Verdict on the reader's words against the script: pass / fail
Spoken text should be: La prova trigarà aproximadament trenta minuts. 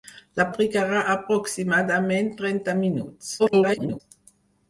fail